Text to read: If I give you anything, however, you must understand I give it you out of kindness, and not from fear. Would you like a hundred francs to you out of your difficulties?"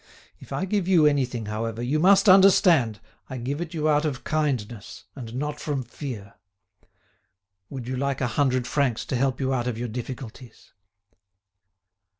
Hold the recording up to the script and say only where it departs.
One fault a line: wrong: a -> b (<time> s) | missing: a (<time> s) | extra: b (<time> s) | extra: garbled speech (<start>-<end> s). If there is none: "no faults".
extra: help (9.2 s)